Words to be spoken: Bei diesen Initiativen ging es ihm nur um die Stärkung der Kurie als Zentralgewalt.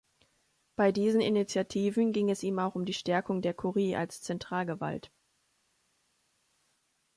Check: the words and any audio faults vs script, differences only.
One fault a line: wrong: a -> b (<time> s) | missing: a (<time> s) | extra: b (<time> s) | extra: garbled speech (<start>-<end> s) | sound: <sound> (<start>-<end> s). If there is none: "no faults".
wrong: nur -> auch (2.6 s)